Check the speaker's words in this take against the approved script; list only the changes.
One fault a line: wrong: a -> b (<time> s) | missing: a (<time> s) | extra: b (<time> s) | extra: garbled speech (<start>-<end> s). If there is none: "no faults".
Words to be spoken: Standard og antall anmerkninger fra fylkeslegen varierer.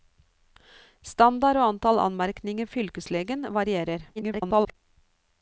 missing: fra (2.7 s)
extra: garbled speech (4.2-4.7 s)